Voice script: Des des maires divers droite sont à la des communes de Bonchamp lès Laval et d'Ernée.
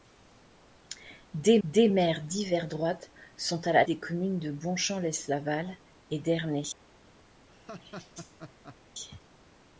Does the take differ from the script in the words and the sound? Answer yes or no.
yes